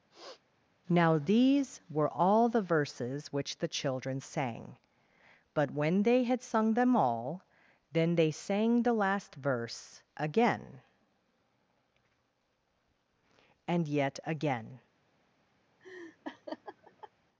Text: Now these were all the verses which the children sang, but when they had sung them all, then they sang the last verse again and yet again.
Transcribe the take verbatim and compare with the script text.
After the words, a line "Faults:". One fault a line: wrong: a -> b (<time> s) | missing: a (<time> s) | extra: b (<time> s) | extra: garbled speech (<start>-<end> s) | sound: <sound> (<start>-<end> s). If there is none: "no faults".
Now these were all the verses which the children sang, but when they had sung them all, then they sang the last verse again and yet again.
Faults:
sound: sniff (0.1-0.4 s)
sound: laugh (15.8-17.1 s)